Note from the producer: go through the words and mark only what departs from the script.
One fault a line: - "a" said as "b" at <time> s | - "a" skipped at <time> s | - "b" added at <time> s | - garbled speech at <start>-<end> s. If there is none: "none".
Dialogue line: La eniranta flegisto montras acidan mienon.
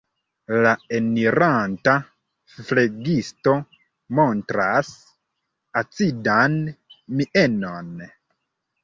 none